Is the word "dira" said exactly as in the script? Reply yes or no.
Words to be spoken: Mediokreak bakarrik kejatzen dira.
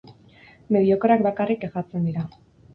yes